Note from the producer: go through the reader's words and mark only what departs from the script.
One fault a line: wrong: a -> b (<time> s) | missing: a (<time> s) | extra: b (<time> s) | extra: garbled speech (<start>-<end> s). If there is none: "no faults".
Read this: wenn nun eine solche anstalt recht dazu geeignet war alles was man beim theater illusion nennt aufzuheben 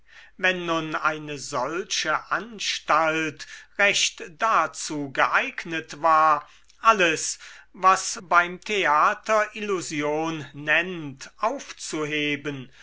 missing: man (8.2 s)